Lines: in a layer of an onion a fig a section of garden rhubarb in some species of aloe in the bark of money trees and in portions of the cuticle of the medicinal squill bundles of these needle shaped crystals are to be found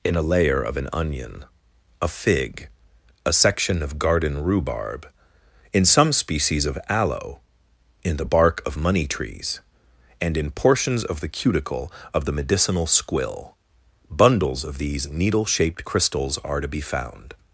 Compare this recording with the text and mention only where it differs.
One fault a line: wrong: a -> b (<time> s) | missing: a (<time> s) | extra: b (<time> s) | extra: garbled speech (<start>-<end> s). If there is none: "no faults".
no faults